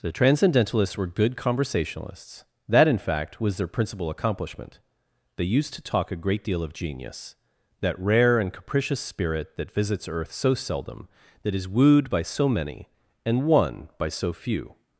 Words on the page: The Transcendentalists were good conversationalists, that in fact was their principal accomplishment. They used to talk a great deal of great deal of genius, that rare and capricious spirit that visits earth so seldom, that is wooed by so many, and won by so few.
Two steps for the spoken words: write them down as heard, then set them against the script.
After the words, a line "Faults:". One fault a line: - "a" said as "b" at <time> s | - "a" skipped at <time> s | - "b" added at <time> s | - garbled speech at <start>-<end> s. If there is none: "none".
The Transcendentalists were good conversationalists, that in fact was their principal accomplishment. They used to talk a great deal of genius, that rare and capricious spirit that visits earth so seldom, that is wooed by so many, and won by so few.
Faults:
- "great deal of" skipped at 6.7 s